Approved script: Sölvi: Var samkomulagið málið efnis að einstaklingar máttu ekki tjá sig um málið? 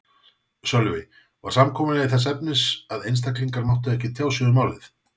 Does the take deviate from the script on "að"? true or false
false